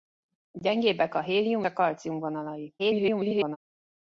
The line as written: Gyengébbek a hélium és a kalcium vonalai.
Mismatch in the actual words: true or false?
true